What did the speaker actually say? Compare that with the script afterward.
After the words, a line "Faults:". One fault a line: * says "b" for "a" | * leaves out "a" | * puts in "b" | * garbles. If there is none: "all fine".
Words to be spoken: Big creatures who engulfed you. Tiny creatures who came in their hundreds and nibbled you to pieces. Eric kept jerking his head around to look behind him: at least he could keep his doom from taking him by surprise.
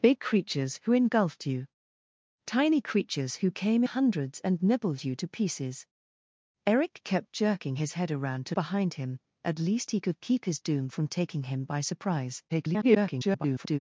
Big creatures who engulfed you. Tiny creatures who came hundreds and nibbled you to pieces. Eric kept jerking his head around to behind him: at least he could keep his doom from taking him by surprise. [garbled]
Faults:
* leaves out "in their"
* leaves out "look"
* garbles